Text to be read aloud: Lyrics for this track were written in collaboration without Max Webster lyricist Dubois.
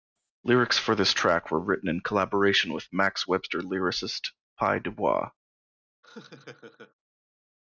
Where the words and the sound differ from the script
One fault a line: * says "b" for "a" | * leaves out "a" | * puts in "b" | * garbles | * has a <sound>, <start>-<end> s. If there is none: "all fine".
* says "with" for "without"
* puts in "Pye"
* has a laugh, 6.0-6.9 s